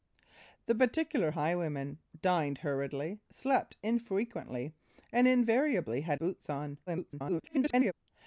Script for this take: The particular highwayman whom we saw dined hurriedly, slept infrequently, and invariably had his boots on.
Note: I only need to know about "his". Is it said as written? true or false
false